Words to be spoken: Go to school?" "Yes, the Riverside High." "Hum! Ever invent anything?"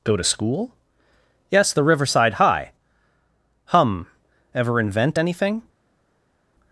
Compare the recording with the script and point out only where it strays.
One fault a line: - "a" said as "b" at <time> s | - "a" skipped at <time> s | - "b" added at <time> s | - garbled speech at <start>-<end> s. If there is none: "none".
none